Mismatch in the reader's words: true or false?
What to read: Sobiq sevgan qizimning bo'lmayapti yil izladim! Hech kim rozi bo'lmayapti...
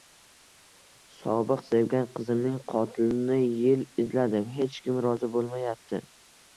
true